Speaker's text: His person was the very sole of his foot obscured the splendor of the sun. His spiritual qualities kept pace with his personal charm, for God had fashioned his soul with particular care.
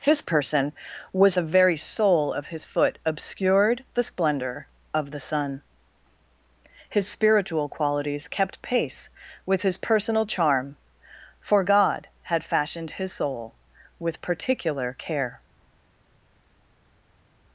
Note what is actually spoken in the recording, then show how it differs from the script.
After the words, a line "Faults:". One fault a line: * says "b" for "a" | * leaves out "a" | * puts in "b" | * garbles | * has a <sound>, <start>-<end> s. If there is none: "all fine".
His person was the very sole of his foot obscured the splendor of the sun. His spiritual qualities kept pace with his personal charm, for God had fashioned his soul with particular care.
Faults:
all fine